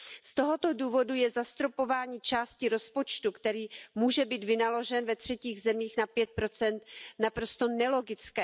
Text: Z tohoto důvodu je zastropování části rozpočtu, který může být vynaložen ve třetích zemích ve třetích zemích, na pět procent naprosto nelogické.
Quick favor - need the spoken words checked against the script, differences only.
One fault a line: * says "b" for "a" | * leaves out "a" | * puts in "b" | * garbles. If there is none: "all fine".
* leaves out "ve třetích zemích"